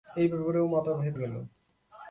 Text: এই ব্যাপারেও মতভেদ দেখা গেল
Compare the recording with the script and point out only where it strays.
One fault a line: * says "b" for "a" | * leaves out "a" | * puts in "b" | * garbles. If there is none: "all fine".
* leaves out "দেখা"